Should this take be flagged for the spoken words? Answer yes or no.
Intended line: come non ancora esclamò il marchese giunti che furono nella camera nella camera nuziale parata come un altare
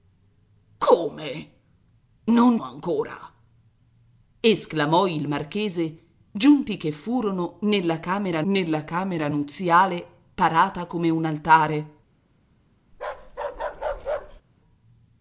no